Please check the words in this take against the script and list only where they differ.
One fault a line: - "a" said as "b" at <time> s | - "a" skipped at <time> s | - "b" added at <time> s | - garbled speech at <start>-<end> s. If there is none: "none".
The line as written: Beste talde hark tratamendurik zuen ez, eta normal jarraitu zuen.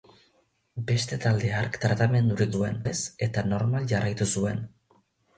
none